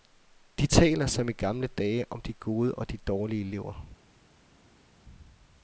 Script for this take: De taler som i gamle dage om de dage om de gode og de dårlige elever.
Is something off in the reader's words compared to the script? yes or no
yes